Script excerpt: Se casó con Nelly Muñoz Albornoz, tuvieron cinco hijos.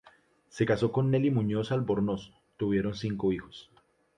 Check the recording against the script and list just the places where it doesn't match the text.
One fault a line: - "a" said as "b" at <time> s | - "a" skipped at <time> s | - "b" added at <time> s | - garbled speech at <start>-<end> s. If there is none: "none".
none